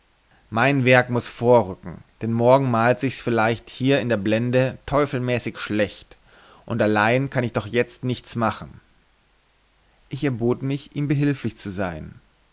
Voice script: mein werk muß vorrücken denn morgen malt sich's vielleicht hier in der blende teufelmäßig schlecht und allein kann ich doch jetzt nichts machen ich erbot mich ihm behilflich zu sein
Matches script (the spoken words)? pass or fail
pass